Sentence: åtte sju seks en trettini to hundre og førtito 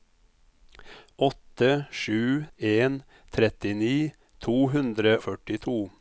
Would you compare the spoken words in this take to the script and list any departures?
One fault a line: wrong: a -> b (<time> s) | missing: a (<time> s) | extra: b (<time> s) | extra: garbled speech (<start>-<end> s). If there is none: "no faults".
missing: seks (2.4 s)
missing: og (5.2 s)